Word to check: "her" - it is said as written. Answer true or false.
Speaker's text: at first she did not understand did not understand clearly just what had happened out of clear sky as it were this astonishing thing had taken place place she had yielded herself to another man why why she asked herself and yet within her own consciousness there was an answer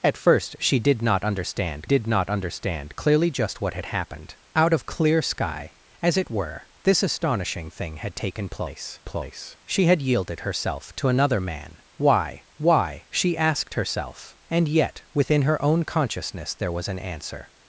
true